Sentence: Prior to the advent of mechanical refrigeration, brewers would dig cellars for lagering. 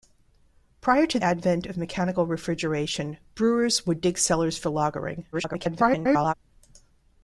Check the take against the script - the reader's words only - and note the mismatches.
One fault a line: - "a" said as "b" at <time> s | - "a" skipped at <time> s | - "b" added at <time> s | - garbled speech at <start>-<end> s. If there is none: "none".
- "the" skipped at 1.2 s
- garbled speech at 5.3-6.3 s